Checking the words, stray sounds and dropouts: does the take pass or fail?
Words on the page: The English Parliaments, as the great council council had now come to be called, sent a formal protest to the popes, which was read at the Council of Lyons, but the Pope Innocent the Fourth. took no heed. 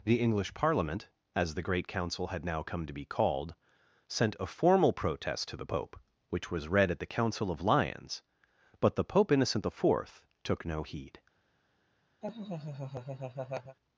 fail